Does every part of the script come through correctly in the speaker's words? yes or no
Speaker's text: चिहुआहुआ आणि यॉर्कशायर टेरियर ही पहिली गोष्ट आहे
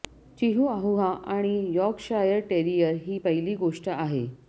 yes